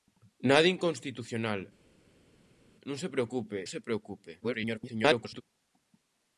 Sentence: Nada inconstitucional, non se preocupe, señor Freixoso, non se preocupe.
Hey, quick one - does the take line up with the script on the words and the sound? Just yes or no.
no